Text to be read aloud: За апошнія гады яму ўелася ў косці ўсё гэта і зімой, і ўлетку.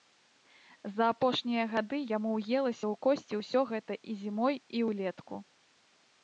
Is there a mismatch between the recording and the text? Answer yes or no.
no